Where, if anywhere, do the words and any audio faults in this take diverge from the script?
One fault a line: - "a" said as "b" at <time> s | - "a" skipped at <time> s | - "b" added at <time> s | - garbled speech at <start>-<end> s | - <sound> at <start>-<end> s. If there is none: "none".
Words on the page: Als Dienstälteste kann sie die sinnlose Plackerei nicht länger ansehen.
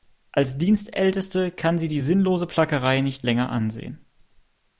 none